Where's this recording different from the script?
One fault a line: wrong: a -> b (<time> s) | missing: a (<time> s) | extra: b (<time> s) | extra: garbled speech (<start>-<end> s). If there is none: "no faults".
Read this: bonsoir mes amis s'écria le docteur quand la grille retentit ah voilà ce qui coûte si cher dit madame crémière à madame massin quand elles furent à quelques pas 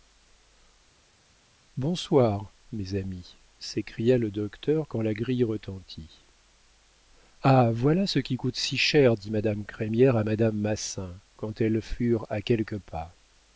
no faults